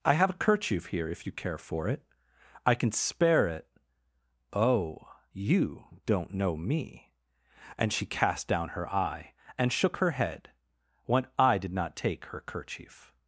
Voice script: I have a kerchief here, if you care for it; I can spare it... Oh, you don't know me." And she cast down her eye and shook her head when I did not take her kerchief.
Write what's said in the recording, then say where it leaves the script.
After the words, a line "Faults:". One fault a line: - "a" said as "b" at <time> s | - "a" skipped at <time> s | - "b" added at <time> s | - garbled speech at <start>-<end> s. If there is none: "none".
I have a kerchief here, if you care for it; I can spare it... Oh, you don't know me." And she cast down her eye and shook her head when I did not take her kerchief.
Faults:
none